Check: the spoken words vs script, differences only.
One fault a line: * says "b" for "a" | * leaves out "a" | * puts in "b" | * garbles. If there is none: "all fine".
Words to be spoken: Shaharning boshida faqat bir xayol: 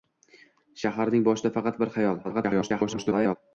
* garbles